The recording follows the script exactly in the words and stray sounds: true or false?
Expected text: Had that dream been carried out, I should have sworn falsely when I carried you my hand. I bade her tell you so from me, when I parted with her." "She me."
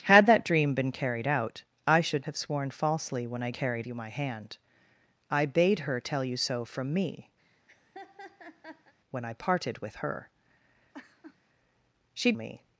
false